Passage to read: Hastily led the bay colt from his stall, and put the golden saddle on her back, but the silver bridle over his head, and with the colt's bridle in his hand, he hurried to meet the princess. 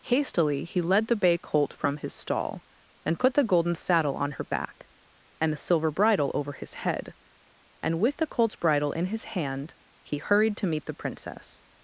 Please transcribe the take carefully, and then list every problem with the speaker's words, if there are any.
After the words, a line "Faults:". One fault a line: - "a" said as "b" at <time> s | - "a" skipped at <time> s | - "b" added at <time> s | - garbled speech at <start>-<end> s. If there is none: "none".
Hastily he led the bay colt from his stall, and put the golden saddle on her back, and the silver bridle over his head, and with the colt's bridle in his hand, he hurried to meet the princess.
Faults:
- "he" added at 0.6 s
- "but" said as "and" at 5.4 s